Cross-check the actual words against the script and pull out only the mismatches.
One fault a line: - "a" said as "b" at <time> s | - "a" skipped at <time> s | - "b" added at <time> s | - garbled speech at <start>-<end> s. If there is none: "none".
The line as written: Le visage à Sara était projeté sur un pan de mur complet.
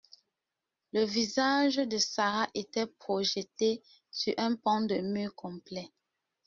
- "à" said as "de" at 1.8 s